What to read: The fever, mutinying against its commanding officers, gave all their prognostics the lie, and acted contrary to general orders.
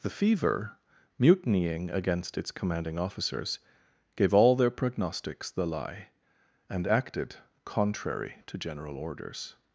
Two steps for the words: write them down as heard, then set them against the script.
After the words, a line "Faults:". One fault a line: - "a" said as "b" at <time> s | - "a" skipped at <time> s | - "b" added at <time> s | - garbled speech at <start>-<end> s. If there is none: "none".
The fever, mutinying against its commanding officers, gave all their prognostics the lie, and acted contrary to general orders.
Faults:
none